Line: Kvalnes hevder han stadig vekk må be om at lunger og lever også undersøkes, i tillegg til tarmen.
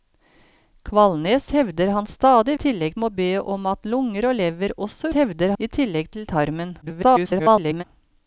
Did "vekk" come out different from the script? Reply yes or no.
yes